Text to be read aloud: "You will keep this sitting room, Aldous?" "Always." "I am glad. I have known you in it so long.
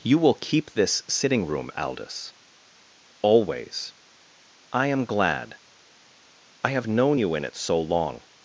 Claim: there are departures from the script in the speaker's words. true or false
false